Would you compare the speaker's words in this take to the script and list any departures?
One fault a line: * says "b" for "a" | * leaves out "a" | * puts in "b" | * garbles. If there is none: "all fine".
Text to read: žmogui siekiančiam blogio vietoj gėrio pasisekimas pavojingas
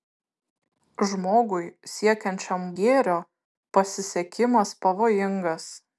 * leaves out "blogio vietoj"